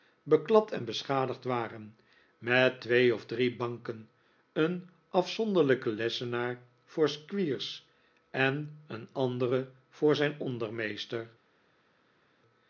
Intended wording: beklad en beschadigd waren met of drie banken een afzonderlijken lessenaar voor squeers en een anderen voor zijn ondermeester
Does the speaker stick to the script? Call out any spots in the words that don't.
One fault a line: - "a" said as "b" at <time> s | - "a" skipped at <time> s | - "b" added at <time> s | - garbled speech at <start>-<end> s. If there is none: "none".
- "twee" added at 2.8 s